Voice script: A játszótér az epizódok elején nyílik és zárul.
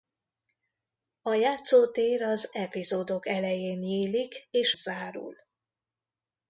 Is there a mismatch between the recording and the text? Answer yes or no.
no